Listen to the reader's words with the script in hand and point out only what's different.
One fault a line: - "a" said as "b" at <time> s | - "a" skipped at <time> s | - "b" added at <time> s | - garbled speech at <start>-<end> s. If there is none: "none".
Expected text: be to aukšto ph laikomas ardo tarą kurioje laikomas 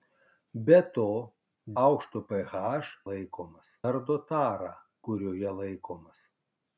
none